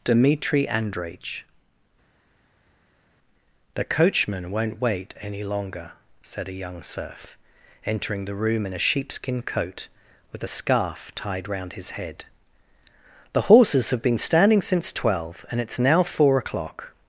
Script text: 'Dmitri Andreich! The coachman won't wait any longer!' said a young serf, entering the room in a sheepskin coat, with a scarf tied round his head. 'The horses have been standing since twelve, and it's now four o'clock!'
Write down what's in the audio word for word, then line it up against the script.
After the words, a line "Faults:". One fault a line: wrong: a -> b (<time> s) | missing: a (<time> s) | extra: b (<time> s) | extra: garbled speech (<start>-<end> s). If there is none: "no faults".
'Dmitri Andreich! The coachman won't wait any longer!' said a young serf, entering the room in a sheepskin coat, with a scarf tied round his head. 'The horses have been standing since twelve, and it's now four o'clock!'
Faults:
no faults